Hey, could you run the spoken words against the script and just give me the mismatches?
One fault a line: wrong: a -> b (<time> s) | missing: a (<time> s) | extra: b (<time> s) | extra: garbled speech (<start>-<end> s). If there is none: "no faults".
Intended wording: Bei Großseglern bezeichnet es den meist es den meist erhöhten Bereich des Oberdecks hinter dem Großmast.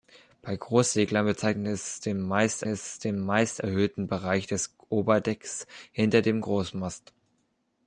no faults